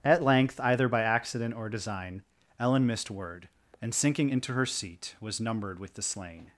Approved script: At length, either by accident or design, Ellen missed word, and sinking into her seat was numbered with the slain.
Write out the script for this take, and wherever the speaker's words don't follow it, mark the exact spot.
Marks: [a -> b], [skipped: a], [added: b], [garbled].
At length, either by accident or design, Ellen missed word, and sinking into her seat was numbered with the slain.